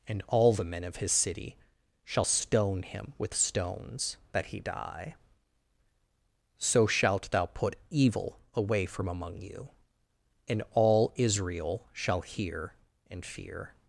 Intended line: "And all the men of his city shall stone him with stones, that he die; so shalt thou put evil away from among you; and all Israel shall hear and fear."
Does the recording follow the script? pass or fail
pass